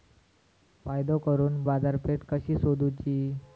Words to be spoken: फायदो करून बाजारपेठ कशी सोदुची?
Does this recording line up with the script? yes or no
yes